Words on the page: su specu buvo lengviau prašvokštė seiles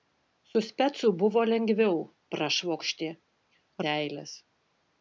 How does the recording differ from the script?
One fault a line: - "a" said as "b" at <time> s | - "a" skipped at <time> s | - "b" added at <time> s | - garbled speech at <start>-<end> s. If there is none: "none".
none